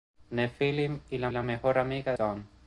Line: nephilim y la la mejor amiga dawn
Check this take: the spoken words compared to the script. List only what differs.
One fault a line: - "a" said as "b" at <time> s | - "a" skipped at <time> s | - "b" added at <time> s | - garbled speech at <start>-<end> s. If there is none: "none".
none